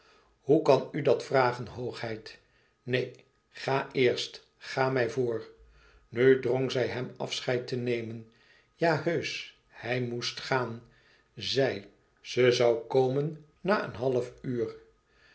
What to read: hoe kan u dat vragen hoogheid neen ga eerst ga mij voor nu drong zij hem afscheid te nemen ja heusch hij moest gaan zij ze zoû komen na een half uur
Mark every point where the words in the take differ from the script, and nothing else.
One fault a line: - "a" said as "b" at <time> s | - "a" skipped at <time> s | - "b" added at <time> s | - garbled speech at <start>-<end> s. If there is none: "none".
none